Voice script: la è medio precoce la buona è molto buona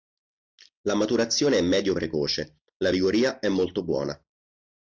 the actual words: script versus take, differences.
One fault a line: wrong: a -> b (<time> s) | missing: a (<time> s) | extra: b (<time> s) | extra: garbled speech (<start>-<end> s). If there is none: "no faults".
extra: maturazione (0.9 s)
wrong: buona -> vigoria (2.9 s)